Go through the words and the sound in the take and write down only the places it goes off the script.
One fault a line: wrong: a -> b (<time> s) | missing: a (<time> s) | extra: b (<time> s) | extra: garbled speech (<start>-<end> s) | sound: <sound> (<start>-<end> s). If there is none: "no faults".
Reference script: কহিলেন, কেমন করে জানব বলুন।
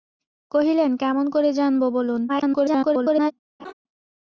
extra: garbled speech (2.3-3.3 s)
sound: laugh (3.6-3.7 s)